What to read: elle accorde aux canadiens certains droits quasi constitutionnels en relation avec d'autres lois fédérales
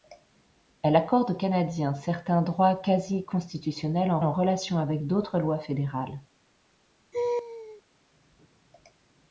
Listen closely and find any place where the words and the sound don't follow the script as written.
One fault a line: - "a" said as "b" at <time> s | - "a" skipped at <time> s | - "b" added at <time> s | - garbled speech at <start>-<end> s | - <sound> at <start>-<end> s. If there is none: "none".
- "en" added at 4.2 s
- laugh at 7.1-7.8 s